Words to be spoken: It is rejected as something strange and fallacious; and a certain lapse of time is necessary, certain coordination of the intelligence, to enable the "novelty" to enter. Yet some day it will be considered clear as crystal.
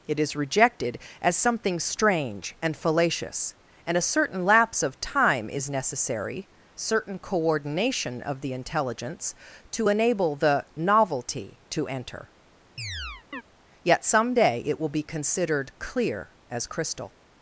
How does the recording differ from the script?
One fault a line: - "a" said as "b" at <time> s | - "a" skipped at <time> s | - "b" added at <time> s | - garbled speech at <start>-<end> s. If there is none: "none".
none